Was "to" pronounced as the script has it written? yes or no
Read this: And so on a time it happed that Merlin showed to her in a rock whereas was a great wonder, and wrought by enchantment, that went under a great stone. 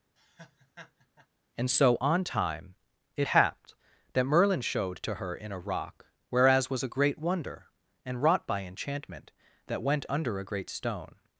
yes